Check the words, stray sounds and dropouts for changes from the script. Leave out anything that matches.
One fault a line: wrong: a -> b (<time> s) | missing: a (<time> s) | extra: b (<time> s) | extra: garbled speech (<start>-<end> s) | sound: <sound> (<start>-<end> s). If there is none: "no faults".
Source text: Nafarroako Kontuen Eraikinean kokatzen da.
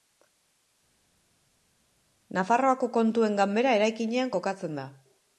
extra: Ganbera (3.4 s)